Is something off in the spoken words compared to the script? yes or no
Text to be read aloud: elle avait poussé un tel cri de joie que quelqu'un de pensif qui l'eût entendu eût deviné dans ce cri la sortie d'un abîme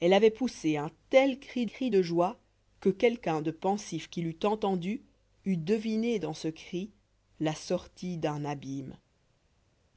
yes